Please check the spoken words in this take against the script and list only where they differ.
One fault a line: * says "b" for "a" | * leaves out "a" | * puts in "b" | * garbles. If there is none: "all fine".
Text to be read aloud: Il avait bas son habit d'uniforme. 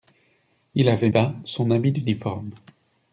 all fine